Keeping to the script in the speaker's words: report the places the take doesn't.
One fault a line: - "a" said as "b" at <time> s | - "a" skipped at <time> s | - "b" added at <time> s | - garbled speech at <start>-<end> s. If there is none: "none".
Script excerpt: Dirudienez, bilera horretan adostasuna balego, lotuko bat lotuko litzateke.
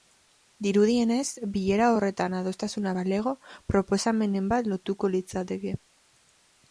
- "lotuko" said as "proposamenen" at 3.7 s